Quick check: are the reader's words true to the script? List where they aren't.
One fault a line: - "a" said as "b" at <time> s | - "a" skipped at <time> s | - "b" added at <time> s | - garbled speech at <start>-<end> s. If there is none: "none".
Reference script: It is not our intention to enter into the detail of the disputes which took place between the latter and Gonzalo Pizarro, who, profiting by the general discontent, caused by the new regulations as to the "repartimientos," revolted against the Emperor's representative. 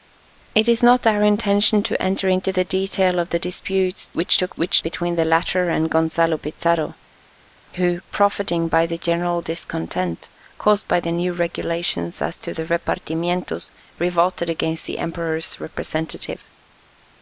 - "place" said as "which" at 4.6 s